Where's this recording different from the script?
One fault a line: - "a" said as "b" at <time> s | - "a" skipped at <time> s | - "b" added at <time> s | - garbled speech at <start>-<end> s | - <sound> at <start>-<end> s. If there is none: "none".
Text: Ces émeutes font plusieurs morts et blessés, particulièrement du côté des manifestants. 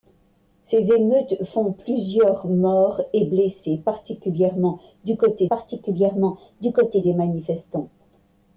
- "particulièrement du côté" added at 5.5 s